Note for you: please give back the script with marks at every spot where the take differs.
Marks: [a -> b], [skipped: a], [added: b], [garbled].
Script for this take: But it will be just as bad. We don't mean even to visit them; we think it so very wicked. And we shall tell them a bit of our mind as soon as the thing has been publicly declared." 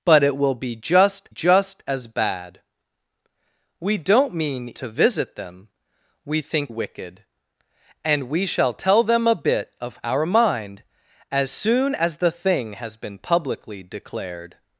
But it will be just [added: just] as bad. We don't mean [skipped: even] to visit them; we think [skipped: it so very] wicked. And we shall tell them a bit of our mind as soon as the thing has been publicly declared."